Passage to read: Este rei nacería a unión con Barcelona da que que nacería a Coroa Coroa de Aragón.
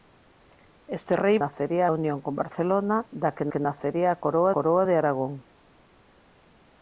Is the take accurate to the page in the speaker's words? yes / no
yes